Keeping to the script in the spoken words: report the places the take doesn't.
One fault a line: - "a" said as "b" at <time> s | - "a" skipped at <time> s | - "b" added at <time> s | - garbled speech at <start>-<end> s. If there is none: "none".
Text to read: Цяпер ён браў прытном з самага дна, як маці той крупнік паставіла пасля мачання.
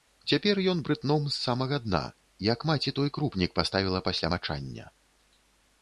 - "браў" skipped at 0.8 s